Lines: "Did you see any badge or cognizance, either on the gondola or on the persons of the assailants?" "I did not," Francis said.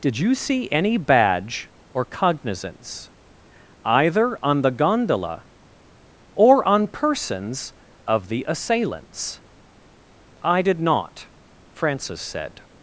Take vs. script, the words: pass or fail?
fail